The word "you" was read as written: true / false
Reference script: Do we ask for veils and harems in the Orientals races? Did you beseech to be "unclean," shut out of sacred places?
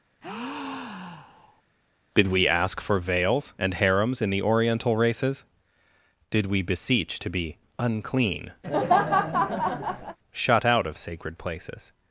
false